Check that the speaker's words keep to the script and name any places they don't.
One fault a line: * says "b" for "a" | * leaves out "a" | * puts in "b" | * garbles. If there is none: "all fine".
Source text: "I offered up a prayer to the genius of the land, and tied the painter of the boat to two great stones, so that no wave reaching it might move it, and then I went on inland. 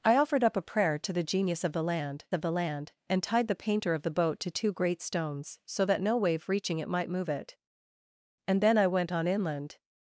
* puts in "of the land"